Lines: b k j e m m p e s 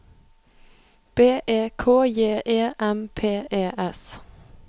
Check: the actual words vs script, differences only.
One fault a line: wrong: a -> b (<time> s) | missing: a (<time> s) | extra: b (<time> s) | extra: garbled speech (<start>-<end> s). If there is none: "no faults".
extra: e (1.5 s)
missing: m (3.1 s)